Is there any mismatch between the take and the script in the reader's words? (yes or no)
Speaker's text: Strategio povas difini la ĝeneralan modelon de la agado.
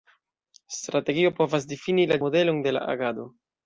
yes